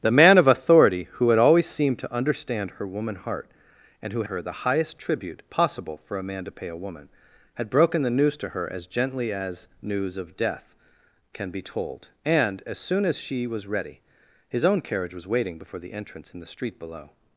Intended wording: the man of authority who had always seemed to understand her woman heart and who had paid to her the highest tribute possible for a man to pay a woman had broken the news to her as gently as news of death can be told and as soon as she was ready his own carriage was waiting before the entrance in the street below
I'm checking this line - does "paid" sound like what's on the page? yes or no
no